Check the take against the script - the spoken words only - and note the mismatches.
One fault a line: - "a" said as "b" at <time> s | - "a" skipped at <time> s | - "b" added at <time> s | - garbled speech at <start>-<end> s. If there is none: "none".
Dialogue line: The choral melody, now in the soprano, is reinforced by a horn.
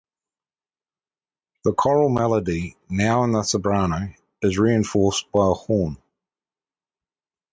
none